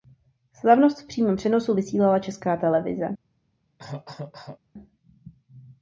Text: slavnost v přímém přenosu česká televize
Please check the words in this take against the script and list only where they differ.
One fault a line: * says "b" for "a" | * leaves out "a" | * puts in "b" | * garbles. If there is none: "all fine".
* puts in "vysílala"